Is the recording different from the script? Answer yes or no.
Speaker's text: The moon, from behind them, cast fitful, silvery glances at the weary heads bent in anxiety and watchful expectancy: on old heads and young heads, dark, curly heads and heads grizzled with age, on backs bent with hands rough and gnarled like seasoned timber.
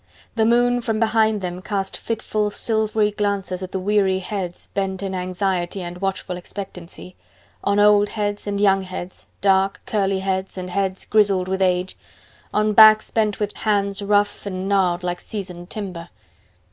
no